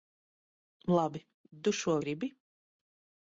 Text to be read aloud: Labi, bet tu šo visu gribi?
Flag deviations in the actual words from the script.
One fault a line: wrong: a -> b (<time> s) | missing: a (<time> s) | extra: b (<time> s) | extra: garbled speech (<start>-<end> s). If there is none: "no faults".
missing: bet (1.2 s)
missing: visu (2.0 s)